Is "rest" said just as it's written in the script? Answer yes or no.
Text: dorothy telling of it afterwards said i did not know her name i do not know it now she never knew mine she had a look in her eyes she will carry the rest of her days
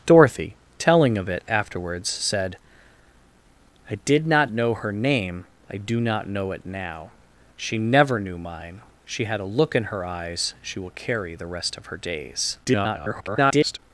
yes